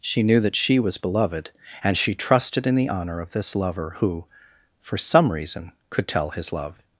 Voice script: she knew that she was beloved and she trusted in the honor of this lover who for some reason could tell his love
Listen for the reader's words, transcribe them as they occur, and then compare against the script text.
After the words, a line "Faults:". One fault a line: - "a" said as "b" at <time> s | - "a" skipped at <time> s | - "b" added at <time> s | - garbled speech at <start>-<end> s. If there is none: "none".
she knew that she was beloved and she trusted in the honor of this lover who for some reason could tell his love
Faults:
none